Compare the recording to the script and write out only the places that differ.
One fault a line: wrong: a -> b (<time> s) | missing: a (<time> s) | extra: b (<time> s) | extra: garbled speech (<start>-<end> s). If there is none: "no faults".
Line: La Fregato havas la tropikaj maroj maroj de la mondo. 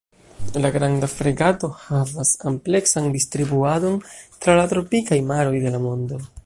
extra: Granda (0.8 s)
extra: ampleksan distribuadon tra (2.5 s)
missing: maroj (5.6 s)